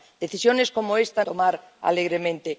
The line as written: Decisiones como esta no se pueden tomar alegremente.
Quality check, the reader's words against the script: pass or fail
fail